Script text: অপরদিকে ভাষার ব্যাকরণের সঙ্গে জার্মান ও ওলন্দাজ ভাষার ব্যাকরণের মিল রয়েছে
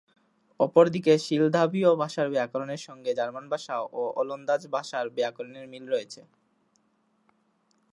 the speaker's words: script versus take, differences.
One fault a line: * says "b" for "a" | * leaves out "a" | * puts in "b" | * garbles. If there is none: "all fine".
* puts in "সিলদাভীয়"
* puts in "ভাষা"